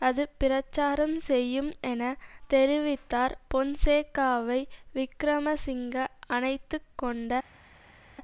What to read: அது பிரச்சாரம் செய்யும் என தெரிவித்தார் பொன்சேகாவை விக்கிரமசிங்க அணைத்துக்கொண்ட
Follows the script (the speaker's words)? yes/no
yes